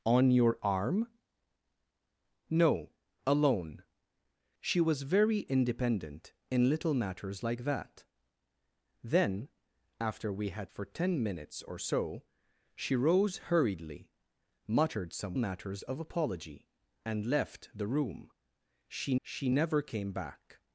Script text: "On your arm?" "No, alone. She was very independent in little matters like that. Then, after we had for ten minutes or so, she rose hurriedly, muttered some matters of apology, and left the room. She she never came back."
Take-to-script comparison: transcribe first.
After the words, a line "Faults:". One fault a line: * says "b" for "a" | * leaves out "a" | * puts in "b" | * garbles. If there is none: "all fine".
"On your arm?" "No, alone. She was very independent in little matters like that. Then, after we had for ten minutes or so, she rose hurriedly, muttered some matters of apology, and left the room. She she never came back."
Faults:
all fine